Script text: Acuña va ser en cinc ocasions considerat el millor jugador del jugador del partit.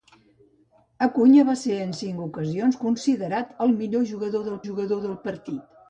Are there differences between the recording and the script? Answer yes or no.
no